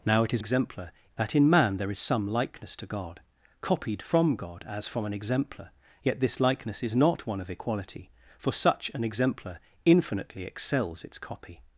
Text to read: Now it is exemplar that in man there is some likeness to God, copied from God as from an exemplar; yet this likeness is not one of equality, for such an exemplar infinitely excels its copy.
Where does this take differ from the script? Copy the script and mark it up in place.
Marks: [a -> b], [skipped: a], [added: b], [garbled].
Now it is exemplar that in man there is some likeness to God, copied from God as from an exemplar; yet this likeness is not one of equality, for such an exemplar infinitely excels its copy.